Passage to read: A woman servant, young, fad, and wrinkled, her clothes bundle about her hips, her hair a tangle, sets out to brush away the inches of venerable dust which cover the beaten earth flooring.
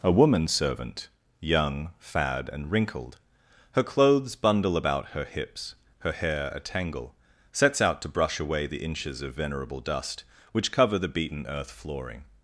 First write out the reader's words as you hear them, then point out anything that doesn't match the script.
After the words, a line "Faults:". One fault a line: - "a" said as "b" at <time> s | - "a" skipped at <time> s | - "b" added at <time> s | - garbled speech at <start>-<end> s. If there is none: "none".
A woman servant, young, fad, and wrinkled, her clothes bundle about her hips, her hair a tangle, sets out to brush away the inches of venerable dust which cover the beaten earth flooring.
Faults:
none